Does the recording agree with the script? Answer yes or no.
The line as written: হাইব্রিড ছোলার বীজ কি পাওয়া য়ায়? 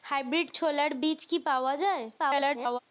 no